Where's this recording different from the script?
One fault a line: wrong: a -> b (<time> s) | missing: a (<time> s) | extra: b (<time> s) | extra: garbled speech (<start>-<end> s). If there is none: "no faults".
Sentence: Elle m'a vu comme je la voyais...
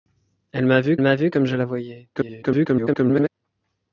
extra: m'a vu (1.0 s)
extra: garbled speech (2.1-3.3 s)